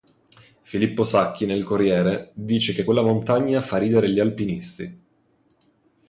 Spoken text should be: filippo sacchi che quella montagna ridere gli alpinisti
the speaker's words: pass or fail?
fail